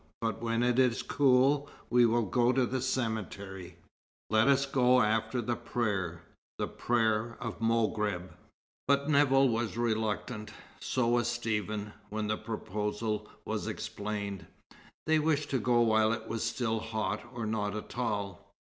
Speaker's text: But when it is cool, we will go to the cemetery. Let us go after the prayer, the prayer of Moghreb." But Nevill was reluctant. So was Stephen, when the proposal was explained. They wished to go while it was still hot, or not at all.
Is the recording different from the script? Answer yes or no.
no